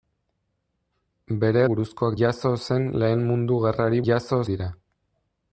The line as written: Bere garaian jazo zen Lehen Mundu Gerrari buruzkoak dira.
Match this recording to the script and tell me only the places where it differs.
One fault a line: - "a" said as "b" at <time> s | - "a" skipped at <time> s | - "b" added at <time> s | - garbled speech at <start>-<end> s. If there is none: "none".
- "garaian" said as "buruzkoak" at 1.7 s
- "buruzkoak" said as "jazo" at 4.1 s